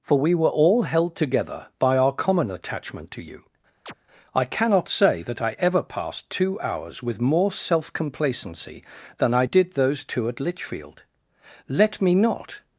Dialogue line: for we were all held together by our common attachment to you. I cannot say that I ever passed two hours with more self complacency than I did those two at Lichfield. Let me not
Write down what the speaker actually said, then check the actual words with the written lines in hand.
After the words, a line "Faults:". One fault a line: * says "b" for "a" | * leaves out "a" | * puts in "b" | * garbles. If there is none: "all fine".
for we were all held together by our common attachment to you. I cannot say that I ever passed two hours with more self complacency than I did those two at Lichfield. Let me not
Faults:
all fine